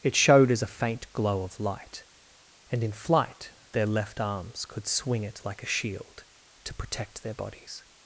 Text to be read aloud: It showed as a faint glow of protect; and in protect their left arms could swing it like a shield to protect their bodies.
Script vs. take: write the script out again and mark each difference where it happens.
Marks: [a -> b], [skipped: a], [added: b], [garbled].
It showed as a faint glow of [protect; -> light] and in [protect -> flight] their left arms could swing it like a shield to protect their bodies.